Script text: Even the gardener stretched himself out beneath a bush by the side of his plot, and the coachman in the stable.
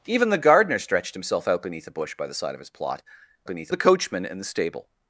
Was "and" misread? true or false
true